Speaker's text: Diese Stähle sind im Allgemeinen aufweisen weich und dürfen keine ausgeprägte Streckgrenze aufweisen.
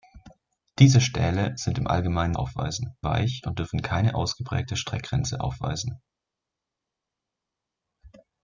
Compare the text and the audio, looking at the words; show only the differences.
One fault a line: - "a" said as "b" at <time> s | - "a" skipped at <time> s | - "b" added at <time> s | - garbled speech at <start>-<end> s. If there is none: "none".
none